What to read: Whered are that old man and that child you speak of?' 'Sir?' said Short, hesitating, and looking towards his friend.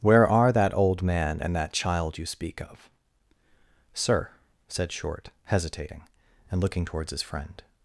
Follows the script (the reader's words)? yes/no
no